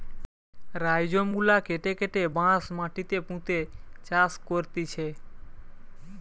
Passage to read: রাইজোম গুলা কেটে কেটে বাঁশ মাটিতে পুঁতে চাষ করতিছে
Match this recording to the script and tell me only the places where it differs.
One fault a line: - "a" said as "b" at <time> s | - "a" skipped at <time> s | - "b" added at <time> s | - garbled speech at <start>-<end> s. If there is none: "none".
none